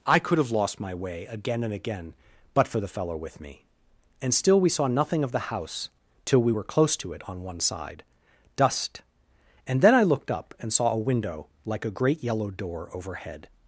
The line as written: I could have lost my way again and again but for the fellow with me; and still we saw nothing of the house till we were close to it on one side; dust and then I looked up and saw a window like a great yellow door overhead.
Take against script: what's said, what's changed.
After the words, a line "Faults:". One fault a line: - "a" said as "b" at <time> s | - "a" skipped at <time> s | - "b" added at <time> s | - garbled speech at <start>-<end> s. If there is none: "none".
I could have lost my way again and again but for the fellow with me; and still we saw nothing of the house till we were close to it on one side; dust and then I looked up and saw a window like a great yellow door overhead.
Faults:
none